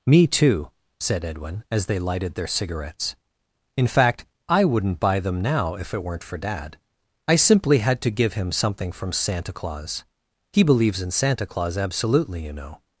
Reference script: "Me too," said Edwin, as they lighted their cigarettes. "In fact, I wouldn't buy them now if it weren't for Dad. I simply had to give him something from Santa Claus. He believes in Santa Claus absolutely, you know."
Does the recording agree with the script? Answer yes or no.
yes